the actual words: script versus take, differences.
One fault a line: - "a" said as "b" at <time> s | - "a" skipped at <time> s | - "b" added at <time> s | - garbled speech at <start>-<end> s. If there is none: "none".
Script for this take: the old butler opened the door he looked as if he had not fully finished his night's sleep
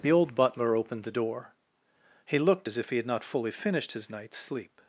none